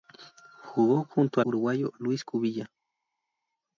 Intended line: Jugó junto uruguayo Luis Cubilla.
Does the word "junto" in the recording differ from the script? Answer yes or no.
no